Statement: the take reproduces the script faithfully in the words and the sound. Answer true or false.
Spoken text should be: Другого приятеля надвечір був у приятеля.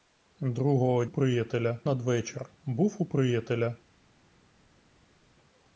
true